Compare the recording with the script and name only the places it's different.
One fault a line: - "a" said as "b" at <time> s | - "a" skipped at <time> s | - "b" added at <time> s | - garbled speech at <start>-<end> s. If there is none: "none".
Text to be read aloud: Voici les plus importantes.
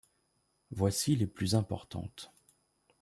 none